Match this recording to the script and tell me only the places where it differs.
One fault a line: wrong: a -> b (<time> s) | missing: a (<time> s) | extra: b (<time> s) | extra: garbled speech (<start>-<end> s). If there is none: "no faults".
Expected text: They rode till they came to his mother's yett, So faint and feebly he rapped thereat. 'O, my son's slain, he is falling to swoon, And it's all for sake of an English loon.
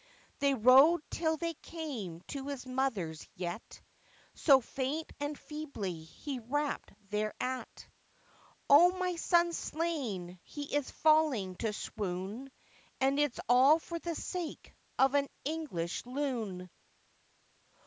extra: the (14.0 s)